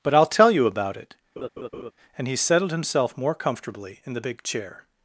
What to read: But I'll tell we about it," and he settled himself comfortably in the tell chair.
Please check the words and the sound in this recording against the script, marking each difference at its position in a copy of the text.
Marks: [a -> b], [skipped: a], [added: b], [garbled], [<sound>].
But I'll tell [we -> you] about it," [laugh] and he settled himself [added: more] comfortably in the [tell -> big] chair.